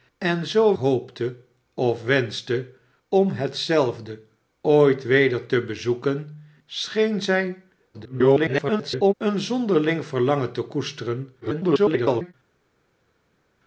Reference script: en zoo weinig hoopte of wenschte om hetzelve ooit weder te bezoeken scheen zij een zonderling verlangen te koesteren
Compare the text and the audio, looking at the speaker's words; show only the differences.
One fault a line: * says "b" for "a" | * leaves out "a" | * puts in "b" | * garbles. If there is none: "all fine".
* leaves out "weinig"
* garbles
* garbles